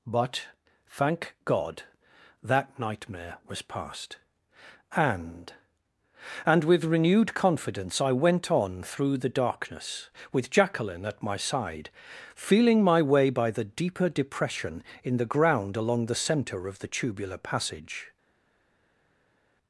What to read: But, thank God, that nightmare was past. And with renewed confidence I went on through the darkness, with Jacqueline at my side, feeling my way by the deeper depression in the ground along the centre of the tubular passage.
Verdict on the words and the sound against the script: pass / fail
fail